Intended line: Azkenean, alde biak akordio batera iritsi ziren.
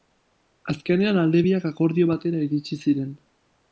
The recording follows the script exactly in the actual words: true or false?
true